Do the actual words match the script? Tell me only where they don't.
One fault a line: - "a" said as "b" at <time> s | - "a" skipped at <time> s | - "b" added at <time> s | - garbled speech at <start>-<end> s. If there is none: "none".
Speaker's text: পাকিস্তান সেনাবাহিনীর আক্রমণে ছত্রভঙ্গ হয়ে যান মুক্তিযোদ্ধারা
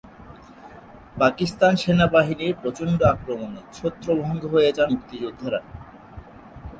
- "প্রচণ্ড" added at 2.6 s